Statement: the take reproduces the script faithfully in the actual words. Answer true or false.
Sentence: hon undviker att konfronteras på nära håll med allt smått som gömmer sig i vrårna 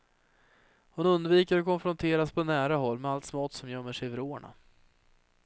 true